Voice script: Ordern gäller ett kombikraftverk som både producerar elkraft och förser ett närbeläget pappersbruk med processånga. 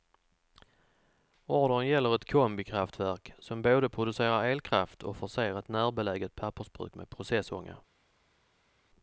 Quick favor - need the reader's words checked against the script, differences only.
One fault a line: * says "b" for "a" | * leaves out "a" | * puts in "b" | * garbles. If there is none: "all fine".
all fine